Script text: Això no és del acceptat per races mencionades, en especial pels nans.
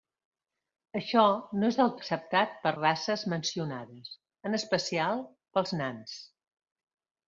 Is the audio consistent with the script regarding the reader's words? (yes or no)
yes